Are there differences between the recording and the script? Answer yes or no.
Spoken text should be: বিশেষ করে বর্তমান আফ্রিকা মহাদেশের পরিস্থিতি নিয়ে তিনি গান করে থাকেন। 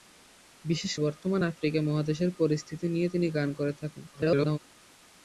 yes